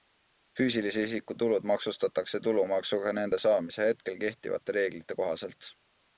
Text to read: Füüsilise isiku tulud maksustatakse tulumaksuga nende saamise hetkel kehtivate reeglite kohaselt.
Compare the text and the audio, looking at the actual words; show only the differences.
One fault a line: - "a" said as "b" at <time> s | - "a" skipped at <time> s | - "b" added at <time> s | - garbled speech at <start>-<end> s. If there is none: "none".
none